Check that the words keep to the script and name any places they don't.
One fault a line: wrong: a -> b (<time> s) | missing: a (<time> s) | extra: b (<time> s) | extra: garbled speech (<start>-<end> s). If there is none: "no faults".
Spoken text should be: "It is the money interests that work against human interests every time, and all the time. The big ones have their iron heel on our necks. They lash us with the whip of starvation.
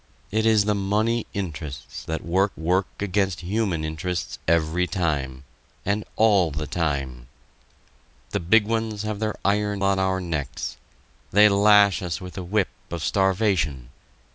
extra: work (2.6 s)
missing: heel (9.8 s)